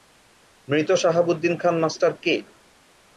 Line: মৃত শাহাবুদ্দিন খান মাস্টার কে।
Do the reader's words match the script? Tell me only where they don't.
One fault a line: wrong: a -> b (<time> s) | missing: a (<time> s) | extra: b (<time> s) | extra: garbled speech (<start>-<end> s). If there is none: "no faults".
no faults